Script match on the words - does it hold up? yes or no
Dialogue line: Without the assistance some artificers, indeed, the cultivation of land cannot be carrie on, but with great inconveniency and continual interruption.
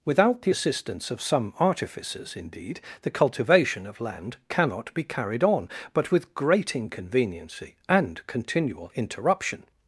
no